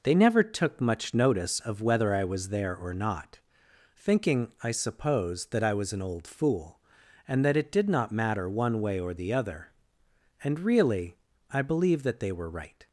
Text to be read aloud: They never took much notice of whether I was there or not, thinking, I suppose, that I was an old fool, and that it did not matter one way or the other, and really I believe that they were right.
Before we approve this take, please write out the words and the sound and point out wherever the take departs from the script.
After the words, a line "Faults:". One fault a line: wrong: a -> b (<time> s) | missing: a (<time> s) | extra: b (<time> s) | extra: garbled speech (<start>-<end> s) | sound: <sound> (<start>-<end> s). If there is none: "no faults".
They never took much notice of whether I was there or not, thinking, I suppose, that I was an old fool, and that it did not matter one way or the other, and really I believe that they were right.
Faults:
no faults